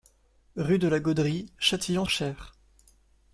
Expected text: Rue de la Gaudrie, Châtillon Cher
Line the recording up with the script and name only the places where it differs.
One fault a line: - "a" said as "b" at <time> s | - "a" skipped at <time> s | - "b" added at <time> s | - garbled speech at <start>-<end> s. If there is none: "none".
none